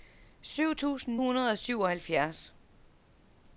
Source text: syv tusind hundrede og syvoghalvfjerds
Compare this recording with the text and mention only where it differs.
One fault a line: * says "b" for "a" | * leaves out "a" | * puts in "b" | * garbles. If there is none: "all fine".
all fine